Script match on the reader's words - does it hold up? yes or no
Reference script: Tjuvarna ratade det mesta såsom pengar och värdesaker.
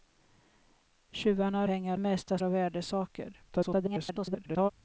no